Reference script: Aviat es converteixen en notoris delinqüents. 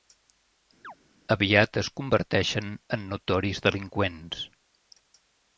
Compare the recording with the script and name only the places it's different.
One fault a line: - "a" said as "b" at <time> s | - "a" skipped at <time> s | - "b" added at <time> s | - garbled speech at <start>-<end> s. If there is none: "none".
none